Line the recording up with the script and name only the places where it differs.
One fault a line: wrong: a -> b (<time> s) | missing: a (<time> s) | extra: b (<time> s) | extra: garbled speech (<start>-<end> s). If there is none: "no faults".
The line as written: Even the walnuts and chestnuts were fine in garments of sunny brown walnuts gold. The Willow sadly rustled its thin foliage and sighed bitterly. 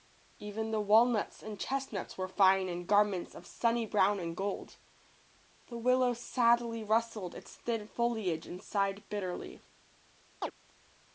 wrong: walnuts -> and (4.2 s)